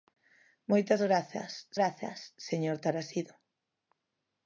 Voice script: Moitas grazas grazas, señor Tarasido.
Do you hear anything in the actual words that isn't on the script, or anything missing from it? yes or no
no